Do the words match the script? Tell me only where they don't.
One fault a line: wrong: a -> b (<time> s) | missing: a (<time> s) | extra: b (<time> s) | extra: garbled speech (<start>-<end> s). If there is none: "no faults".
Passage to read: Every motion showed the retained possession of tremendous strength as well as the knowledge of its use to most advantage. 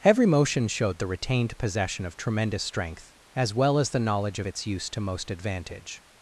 no faults